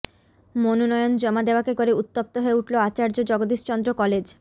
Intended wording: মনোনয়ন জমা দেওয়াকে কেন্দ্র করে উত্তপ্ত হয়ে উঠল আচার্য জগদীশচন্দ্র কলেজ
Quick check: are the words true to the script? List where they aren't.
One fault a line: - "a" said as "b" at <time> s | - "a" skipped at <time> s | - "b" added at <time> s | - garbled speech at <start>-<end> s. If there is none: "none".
- "কেন্দ্র" skipped at 1.7 s